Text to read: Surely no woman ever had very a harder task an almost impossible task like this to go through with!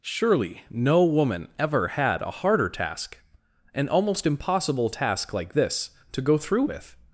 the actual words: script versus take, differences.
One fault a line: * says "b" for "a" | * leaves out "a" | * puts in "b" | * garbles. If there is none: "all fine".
* leaves out "very"